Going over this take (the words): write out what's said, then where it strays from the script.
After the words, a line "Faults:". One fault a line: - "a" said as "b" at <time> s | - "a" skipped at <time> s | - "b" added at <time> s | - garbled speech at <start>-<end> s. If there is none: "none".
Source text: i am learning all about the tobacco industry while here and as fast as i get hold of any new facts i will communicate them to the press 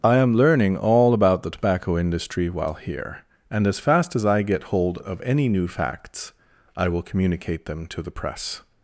i am learning all about the tobacco industry while here and as fast as i get hold of any new facts i will communicate them to the press
Faults:
none